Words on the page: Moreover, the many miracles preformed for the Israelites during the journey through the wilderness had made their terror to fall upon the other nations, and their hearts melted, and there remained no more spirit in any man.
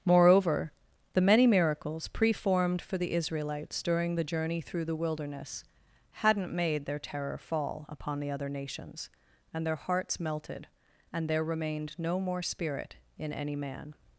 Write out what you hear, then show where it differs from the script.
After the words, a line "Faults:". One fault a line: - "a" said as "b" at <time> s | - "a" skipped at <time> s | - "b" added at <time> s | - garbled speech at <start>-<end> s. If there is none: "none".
Moreover, the many miracles preformed for the Israelites during the journey through the wilderness hadn't made their terror fall upon the other nations, and their hearts melted, and there remained no more spirit in any man.
Faults:
- "had" said as "hadn't" at 6.2 s
- "to" skipped at 7.4 s